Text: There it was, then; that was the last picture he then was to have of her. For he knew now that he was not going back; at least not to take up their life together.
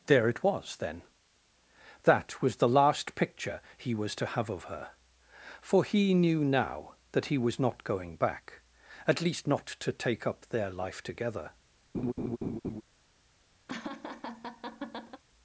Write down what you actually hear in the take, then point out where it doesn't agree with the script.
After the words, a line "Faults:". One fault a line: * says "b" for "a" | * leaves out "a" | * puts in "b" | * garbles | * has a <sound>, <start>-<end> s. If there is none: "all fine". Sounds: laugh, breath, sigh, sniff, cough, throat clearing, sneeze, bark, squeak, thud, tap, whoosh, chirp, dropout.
There it was, then; that was the last picture he was to have of her. For he knew now that he was not going back; at least not to take up their life together.
Faults:
* leaves out "then"
* has a laugh, 11.9-12.8 s
* has a laugh, 13.7-15.2 s